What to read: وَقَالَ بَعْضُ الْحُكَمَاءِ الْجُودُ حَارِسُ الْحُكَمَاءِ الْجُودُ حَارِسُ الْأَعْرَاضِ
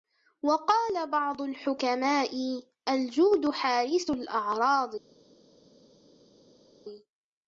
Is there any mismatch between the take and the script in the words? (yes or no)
yes